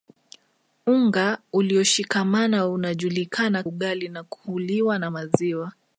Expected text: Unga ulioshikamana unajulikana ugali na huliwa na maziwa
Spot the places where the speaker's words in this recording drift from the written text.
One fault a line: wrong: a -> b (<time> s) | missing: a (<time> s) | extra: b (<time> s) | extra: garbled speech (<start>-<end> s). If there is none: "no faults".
no faults